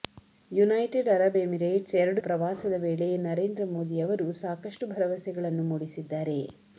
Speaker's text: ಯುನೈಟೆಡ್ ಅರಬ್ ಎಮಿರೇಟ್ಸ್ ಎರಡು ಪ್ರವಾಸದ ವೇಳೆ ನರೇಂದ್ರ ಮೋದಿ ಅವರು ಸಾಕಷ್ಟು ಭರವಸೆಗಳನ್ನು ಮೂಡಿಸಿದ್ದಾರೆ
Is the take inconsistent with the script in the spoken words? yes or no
no